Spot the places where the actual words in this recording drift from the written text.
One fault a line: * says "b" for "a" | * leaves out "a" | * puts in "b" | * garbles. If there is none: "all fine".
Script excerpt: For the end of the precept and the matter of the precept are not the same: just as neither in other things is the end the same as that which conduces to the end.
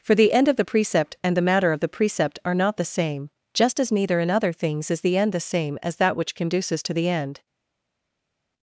all fine